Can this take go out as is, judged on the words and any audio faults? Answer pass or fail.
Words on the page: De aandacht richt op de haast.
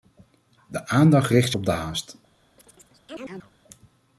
fail